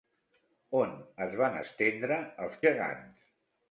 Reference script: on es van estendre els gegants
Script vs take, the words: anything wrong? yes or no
no